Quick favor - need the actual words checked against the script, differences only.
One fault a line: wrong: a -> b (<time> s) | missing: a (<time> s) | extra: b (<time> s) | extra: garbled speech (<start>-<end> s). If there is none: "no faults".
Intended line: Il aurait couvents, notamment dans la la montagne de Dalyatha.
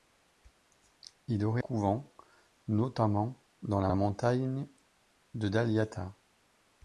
no faults